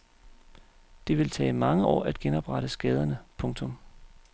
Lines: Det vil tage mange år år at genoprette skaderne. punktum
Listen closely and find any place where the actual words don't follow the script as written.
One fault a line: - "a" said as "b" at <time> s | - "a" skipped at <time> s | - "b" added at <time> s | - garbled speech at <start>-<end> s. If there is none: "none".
- "år" skipped at 2.0 s